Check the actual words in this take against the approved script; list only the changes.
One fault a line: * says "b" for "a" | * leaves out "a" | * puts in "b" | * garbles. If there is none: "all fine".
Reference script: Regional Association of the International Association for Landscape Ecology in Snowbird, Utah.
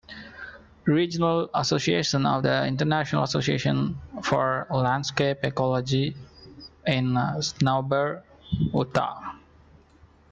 all fine